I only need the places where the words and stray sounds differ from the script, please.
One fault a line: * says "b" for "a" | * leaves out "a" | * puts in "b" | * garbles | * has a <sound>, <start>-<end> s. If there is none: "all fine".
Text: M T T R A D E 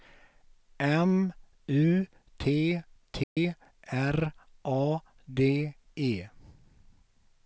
* puts in "U"
* has a dropout, 3.2-3.4 s